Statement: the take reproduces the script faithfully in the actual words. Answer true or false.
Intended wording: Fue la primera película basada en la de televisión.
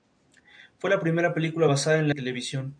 true